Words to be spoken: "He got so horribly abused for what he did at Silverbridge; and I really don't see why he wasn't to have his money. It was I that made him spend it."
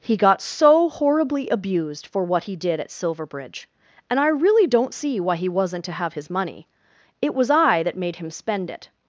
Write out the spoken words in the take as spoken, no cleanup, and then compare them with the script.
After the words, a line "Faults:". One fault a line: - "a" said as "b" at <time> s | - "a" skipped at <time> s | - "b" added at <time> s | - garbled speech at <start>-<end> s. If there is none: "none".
"He got so horribly abused for what he did at Silverbridge; and I really don't see why he wasn't to have his money. It was I that made him spend it."
Faults:
none